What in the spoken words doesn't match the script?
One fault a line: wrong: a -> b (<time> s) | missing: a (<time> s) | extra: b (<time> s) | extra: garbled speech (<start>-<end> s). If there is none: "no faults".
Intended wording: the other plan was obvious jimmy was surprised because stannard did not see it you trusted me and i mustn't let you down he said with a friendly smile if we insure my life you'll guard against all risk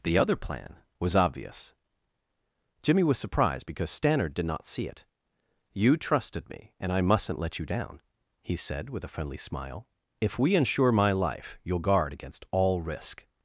no faults